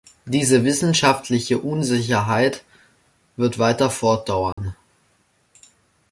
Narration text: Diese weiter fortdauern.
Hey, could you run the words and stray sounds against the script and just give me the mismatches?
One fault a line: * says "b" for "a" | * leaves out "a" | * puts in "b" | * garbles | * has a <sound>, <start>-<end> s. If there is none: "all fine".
* puts in "wissenschaftliche Unsicherheit wird"
* has a dropout, 4.5-4.6 s